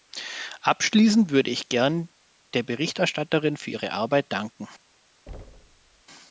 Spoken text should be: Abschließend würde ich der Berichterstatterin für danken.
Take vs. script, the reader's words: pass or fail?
fail